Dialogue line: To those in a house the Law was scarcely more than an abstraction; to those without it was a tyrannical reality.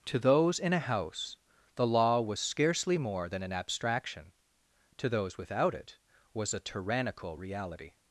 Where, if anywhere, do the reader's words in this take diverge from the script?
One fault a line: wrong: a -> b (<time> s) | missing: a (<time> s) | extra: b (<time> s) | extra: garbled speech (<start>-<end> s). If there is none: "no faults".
no faults